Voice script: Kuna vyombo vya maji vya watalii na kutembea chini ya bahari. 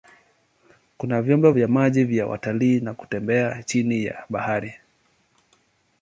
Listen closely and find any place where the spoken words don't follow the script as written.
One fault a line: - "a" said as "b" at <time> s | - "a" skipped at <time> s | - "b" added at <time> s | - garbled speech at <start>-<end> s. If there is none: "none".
none